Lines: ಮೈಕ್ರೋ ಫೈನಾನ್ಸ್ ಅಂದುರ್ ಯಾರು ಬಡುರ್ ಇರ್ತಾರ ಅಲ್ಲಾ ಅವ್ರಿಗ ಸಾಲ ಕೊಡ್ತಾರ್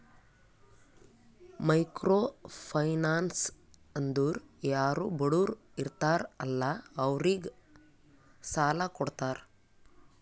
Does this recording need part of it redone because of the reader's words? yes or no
no